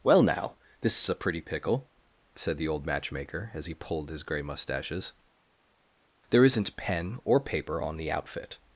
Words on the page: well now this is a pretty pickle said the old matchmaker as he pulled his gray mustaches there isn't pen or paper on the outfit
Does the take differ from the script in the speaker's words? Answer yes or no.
no